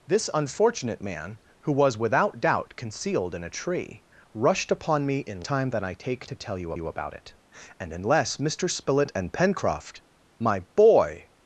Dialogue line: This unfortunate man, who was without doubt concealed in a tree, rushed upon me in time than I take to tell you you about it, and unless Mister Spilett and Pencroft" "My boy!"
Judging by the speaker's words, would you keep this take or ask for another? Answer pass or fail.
pass